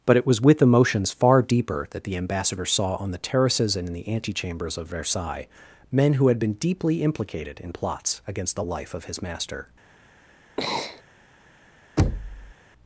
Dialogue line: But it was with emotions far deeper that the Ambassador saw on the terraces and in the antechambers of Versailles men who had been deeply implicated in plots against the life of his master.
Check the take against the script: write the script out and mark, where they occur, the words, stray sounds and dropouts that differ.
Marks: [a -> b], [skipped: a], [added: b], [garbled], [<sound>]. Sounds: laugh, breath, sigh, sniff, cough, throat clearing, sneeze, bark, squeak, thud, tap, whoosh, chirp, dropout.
But it was with emotions far deeper that the Ambassador saw on the terraces and in the antechambers of Versailles men who had been deeply implicated in plots against the life of his master. [sneeze] [thud]